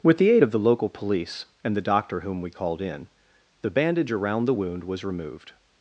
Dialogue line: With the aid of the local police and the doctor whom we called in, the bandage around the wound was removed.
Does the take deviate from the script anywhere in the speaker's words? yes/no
no